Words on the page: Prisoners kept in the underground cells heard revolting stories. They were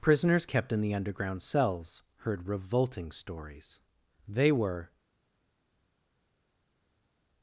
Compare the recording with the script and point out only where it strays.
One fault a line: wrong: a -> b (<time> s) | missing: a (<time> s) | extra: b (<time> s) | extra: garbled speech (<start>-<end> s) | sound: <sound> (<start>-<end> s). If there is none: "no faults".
no faults